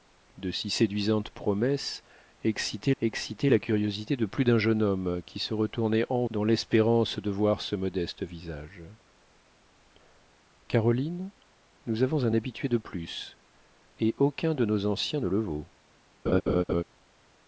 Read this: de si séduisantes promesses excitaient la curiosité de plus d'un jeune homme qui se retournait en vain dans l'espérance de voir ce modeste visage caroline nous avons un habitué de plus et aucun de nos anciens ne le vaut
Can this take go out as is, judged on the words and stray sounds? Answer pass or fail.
fail